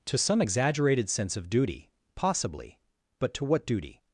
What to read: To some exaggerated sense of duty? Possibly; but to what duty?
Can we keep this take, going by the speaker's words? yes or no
yes